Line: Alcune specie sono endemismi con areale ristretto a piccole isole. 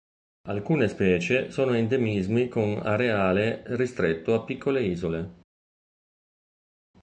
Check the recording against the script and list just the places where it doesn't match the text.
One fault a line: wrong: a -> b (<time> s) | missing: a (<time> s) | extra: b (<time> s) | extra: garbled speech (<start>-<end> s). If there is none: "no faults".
no faults